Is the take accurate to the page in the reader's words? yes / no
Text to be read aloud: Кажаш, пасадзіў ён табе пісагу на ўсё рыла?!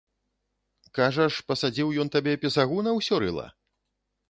yes